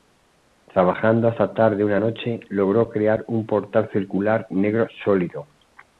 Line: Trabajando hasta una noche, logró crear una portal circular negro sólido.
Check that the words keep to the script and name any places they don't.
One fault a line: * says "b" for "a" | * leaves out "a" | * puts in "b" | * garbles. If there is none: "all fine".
* puts in "tarde"
* says "un" for "una"